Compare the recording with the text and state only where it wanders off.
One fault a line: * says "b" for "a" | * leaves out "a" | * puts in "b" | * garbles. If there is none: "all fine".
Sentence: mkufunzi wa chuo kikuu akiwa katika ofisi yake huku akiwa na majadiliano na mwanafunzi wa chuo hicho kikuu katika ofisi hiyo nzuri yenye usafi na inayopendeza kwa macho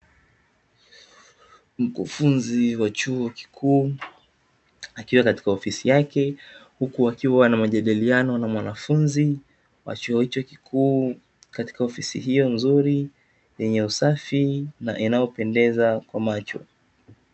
all fine